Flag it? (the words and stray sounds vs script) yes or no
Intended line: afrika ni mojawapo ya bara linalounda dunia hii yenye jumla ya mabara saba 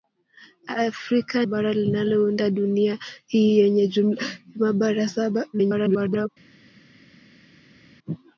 yes